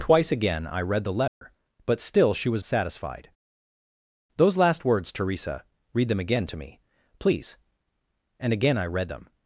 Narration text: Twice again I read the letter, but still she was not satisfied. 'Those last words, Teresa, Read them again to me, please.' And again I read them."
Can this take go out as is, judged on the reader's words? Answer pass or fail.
fail